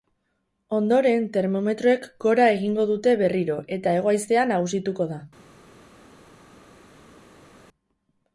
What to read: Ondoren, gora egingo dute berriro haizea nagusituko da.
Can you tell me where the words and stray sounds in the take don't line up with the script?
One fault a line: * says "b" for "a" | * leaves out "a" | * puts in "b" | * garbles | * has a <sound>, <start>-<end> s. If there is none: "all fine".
* puts in "termometroek"
* puts in "eta hego"